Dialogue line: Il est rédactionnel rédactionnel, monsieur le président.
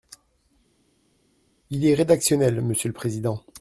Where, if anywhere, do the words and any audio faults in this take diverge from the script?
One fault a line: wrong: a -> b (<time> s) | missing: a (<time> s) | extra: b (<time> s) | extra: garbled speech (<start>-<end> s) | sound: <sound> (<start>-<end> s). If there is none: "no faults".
missing: rédactionnel (2.6 s)